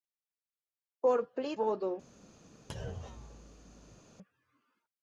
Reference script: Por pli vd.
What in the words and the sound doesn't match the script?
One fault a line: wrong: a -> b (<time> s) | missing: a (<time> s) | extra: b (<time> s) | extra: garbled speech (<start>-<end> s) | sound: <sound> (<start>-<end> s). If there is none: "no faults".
sound: thud (2.7-4.0 s)